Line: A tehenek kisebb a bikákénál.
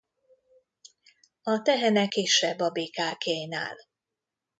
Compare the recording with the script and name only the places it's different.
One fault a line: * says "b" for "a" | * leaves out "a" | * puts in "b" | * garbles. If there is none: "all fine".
all fine